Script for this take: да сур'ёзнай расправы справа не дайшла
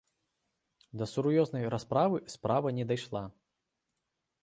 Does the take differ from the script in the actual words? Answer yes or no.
no